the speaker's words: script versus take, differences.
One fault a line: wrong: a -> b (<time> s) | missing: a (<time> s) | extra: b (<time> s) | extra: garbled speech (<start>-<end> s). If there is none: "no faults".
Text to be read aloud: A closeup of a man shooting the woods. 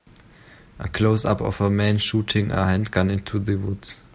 extra: a handgun into (2.5 s)